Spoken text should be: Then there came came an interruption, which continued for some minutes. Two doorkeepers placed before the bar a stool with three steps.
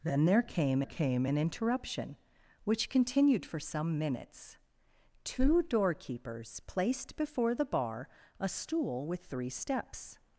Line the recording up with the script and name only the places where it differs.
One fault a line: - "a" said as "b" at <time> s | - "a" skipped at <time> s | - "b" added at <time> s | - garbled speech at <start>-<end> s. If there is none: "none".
none